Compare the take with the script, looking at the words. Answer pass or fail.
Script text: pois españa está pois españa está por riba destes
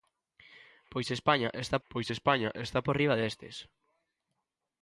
pass